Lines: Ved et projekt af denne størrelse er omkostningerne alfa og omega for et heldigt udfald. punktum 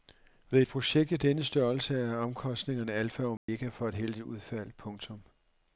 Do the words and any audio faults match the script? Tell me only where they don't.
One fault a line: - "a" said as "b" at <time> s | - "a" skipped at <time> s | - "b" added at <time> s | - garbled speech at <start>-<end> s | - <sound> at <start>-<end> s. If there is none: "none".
- dropout at 3.4-3.5 s